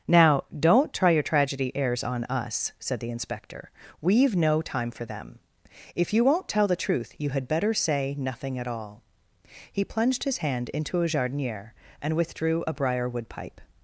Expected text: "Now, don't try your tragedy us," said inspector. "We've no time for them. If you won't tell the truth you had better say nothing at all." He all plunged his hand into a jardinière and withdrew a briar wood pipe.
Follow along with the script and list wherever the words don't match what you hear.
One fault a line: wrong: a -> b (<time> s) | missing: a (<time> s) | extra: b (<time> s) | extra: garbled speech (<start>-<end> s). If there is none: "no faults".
extra: airs on (1.8 s)
extra: the (3.0 s)
missing: all (9.8 s)